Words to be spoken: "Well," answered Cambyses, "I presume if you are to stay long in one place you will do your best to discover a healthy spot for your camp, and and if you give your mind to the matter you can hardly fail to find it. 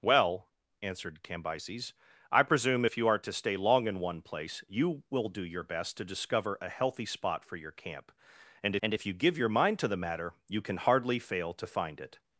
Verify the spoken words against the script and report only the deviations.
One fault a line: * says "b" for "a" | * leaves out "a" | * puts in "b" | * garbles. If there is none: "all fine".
all fine